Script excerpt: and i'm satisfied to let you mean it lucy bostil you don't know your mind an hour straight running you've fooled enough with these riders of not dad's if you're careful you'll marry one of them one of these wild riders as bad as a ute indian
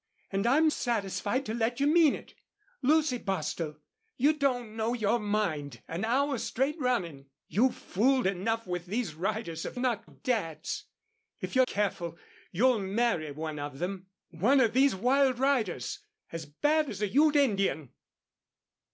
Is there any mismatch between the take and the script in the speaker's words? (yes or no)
no